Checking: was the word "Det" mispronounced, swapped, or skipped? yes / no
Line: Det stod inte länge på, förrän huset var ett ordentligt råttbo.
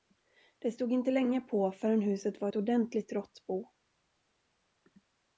no